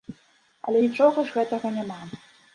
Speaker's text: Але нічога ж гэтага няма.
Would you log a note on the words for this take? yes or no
no